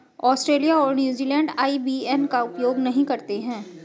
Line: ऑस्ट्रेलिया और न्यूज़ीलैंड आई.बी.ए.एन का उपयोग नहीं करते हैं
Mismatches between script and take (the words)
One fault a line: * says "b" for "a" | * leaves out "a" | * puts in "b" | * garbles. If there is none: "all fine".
all fine